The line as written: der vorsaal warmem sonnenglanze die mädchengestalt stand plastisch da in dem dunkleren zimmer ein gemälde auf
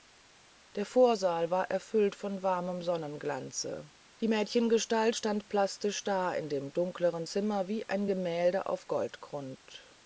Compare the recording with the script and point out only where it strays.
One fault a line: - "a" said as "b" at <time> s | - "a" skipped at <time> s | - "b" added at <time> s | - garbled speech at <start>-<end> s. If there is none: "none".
- "war erfüllt von" added at 1.5 s
- "wie" added at 7.7 s